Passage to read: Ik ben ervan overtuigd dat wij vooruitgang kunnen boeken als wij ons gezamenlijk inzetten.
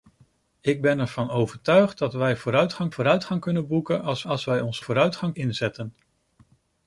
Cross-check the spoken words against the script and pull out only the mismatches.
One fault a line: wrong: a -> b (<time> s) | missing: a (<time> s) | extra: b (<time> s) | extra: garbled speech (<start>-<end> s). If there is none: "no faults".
extra: vooruitgang (2.9 s)
extra: als (4.2 s)
wrong: gezamenlijk -> vooruitgang (4.8 s)